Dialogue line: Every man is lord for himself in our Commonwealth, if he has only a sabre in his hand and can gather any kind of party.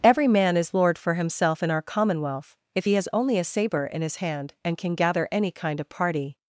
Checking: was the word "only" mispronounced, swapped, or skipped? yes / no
no